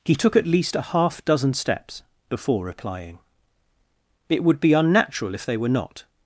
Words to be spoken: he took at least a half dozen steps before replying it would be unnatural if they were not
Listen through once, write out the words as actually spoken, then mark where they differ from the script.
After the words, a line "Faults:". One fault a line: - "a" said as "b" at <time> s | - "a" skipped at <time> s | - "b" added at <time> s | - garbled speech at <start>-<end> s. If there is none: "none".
he took at least a half dozen steps before replying it would be unnatural if they were not
Faults:
none